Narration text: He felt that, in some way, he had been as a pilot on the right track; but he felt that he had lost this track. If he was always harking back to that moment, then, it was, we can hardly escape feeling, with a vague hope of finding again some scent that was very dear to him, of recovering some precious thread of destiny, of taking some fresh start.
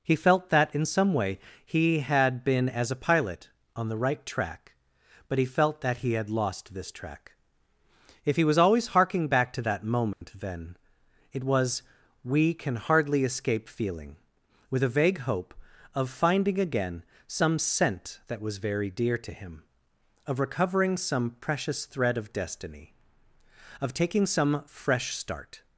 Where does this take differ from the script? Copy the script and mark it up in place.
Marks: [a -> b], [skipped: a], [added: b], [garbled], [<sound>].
He felt that, in some way, he had been as a pilot on the right track; but he felt that he had lost this track. If he was always harking back to that moment, [dropout] then, it was, we can hardly escape feeling, with a vague hope of finding again some scent that was very dear to him, of recovering some precious thread of destiny, of taking some fresh start.